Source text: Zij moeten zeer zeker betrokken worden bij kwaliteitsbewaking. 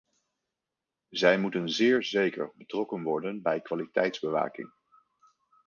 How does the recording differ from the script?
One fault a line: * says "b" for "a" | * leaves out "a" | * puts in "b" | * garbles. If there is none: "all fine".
all fine